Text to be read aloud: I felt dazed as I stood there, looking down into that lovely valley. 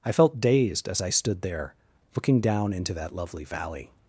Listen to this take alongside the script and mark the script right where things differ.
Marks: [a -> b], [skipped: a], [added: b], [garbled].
I felt dazed as I stood there, looking down into that lovely valley.